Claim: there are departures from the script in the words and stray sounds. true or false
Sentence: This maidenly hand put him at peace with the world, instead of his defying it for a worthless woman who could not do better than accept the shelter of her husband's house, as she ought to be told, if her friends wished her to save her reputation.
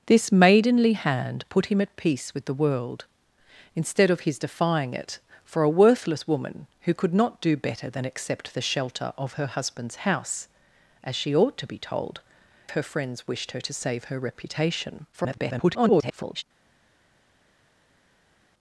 true